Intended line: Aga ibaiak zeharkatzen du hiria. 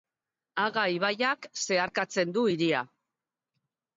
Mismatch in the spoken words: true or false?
false